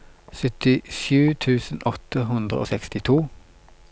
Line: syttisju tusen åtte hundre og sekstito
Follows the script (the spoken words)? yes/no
yes